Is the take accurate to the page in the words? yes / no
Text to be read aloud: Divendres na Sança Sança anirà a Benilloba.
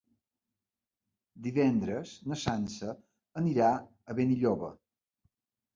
no